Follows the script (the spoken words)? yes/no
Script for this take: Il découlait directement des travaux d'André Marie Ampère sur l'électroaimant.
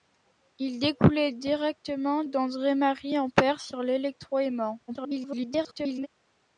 no